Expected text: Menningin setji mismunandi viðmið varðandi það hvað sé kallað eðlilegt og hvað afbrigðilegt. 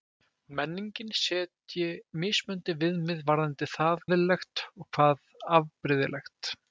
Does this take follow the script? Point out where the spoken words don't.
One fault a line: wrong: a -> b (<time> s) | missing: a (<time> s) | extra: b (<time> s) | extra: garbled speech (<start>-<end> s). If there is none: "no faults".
missing: hvað sé kallað (4.0 s)